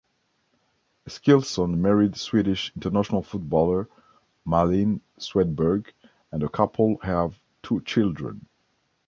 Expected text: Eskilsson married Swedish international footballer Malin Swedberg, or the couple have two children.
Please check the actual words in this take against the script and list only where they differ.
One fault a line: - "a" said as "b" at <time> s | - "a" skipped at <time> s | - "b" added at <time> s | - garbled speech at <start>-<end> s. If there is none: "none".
- "or" said as "and" at 6.3 s